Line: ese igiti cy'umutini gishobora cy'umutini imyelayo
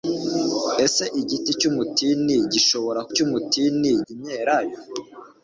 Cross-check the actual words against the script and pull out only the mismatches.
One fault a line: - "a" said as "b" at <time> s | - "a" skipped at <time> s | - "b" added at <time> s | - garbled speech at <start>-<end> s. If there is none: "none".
none